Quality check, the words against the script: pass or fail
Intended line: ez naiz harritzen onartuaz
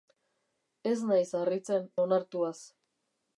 pass